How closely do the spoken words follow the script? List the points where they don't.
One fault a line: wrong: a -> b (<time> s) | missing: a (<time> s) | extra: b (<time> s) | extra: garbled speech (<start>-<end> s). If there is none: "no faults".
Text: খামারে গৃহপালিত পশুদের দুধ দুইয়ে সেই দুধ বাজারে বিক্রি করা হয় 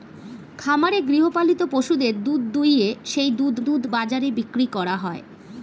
extra: দুধ (3.6 s)